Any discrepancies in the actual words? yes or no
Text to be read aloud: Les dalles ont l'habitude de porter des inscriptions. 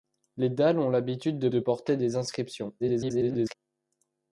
yes